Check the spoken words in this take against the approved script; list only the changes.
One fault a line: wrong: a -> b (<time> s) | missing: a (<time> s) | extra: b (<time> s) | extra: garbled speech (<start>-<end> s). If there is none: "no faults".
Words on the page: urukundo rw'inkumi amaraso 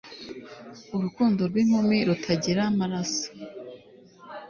extra: rutagira (2.1 s)